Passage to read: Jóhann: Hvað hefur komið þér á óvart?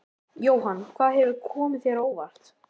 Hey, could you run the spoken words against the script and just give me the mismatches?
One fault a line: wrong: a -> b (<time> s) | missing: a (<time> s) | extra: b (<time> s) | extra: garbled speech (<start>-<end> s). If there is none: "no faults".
no faults